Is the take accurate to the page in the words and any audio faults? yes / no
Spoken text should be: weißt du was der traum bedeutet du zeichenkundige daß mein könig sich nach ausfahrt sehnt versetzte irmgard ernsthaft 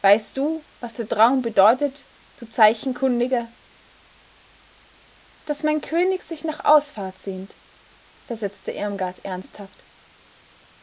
yes